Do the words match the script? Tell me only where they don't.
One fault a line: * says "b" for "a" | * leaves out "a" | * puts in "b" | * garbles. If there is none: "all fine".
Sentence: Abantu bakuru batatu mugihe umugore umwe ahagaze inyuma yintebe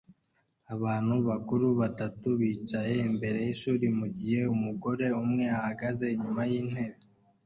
* puts in "bicaye imbere yishuri"